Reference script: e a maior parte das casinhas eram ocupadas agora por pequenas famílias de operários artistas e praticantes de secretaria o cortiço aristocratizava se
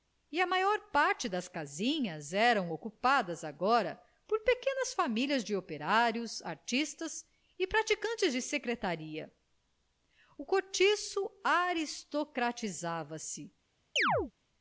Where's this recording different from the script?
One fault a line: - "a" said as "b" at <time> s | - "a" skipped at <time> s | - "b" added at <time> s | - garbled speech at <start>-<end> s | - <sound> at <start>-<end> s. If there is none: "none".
- chirp at 14.0-14.3 s